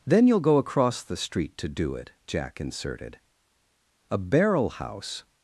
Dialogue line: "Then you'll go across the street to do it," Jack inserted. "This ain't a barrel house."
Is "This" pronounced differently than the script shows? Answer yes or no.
yes